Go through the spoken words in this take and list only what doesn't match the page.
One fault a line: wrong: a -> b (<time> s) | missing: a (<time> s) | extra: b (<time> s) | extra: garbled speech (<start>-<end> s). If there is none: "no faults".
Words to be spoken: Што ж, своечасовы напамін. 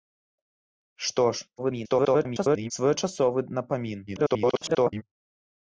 extra: garbled speech (1.6-2.7 s)
extra: garbled speech (4.1-5.0 s)